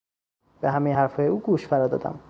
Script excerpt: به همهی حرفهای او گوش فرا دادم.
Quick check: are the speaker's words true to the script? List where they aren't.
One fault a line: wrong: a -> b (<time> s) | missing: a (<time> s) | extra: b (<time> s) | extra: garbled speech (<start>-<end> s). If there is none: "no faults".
no faults